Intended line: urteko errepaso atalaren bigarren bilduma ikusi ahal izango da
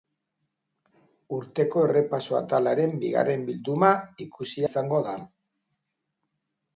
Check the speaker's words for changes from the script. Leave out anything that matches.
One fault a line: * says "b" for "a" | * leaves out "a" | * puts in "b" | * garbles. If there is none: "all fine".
* leaves out "ahal"